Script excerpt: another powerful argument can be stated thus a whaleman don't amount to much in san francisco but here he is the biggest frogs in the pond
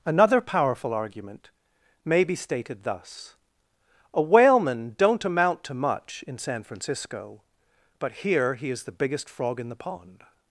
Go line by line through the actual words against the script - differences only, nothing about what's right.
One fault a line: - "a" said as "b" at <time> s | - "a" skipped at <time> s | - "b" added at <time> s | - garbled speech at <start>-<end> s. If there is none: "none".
- "can" said as "may" at 2.0 s
- "frogs" said as "frog" at 9.3 s